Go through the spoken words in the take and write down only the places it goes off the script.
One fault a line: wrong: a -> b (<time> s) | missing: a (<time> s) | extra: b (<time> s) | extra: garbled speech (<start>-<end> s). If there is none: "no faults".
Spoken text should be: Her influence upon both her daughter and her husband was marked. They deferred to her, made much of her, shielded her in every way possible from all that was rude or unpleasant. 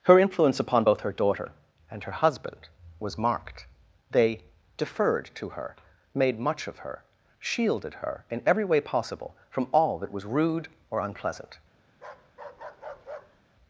no faults